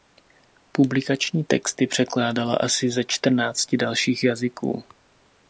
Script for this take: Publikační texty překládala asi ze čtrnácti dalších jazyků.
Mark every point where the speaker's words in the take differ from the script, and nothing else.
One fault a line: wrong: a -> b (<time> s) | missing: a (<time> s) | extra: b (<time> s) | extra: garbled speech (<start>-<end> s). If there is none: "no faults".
no faults